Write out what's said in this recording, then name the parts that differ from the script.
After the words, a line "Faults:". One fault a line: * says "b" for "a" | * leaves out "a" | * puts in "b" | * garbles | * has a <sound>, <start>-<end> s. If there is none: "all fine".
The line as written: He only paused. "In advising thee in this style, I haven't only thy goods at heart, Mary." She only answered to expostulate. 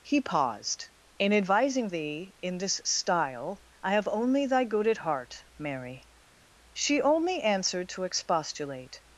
He paused. "In advising thee in this style, I have only thy good at heart, Mary." She only answered to expostulate.
Faults:
* leaves out "only"
* says "have" for "haven't"
* says "good" for "goods"